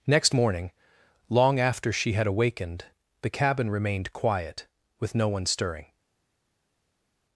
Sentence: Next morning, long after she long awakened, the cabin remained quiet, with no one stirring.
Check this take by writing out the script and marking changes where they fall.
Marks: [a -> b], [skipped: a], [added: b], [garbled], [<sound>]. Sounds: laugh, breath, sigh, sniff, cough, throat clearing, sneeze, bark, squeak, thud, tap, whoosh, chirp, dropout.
Next morning, long after she [long -> had] awakened, the cabin remained quiet, with no one stirring.